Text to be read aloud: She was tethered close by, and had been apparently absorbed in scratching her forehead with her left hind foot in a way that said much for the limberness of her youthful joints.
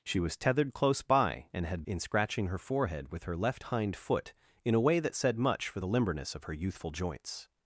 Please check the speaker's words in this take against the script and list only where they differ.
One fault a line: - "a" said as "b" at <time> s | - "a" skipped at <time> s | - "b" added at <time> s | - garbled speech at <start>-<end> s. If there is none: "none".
- "been apparently absorbed" skipped at 1.8 s